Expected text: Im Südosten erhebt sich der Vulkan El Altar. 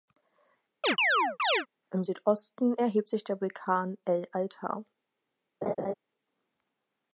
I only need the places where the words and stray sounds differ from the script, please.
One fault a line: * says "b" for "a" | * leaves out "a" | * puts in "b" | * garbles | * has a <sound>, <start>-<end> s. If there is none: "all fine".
* has a chirp, 0.8-1.7 s
* has a laugh, 5.6-5.9 s